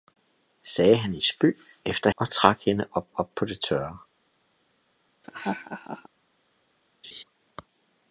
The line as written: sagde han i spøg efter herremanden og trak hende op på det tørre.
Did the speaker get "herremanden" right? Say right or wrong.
wrong